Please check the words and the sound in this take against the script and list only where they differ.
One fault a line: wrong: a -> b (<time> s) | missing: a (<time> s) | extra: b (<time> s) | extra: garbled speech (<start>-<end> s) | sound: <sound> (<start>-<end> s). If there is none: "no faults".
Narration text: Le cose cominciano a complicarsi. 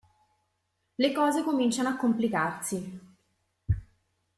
no faults